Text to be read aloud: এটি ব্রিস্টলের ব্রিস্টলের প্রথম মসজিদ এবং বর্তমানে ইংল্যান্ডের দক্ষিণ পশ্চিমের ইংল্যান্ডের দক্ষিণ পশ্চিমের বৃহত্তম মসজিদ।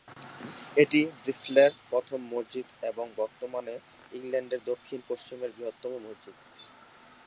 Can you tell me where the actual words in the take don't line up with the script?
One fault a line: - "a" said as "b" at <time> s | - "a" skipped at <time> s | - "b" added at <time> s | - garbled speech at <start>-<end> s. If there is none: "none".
- "ব্রিস্টলের" skipped at 1.7 s
- "ইংল্যান্ডের দক্ষিণ পশ্চিমের" skipped at 5.5 s